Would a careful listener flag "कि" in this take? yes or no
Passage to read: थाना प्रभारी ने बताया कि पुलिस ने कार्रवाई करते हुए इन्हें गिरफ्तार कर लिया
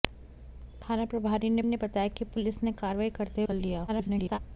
no